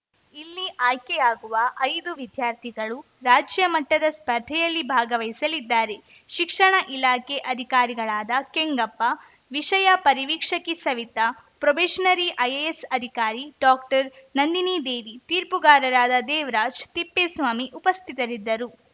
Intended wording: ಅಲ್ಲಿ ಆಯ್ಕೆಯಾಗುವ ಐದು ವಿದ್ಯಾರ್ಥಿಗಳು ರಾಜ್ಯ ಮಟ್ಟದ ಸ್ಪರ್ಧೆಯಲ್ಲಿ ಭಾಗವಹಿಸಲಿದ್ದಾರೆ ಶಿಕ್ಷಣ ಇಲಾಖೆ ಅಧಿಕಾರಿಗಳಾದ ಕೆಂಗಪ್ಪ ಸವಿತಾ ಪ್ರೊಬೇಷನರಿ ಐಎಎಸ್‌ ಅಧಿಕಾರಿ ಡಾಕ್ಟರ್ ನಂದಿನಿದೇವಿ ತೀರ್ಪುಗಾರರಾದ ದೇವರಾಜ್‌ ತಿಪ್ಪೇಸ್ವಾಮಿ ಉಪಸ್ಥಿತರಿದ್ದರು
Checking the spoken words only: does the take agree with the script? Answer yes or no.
no